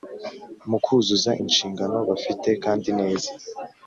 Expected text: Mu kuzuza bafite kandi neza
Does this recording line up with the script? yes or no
no